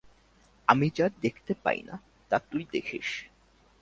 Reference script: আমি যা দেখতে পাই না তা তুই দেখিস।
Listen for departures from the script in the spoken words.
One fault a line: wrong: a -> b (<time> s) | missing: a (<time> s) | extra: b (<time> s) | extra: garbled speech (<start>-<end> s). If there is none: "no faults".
no faults